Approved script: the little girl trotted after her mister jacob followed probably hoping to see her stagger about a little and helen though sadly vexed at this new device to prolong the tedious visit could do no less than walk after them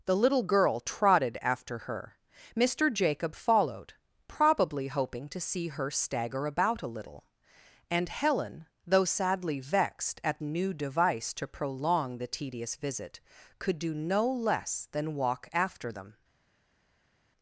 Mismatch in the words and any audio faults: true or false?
true